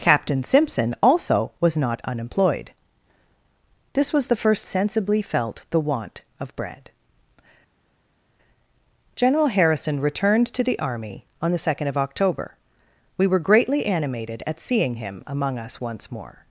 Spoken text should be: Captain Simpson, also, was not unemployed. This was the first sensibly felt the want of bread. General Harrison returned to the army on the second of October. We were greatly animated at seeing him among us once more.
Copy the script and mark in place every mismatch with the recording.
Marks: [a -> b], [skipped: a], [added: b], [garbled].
Captain Simpson, also, was not unemployed. This was the first sensibly felt the want of bread. General Harrison returned to the army on the second of October. We were greatly animated at seeing him among us once more.